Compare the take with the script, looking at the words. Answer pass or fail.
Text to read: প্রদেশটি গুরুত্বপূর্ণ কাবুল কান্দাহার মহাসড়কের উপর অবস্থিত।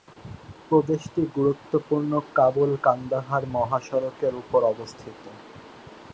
pass